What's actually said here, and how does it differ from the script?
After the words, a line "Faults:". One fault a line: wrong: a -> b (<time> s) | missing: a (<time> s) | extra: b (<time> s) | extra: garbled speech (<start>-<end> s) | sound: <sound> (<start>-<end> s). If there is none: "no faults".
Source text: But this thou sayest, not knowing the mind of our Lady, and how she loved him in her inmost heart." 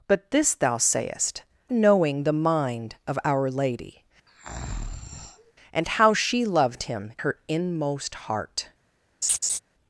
But this thou sayest, knowing the mind of our Lady, and how she loved him her inmost heart."
Faults:
missing: not (1.4 s)
sound: breath (4.3-5.5 s)
missing: in (7.1 s)
sound: laugh (9.2-9.6 s)